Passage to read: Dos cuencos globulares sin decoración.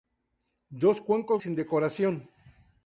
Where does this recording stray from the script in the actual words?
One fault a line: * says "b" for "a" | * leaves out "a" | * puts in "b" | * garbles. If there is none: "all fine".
* leaves out "globulares"